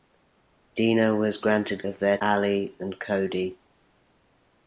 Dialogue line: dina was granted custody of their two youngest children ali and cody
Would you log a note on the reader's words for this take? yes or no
yes